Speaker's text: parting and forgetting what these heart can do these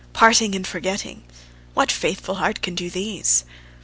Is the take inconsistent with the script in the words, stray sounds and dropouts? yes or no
yes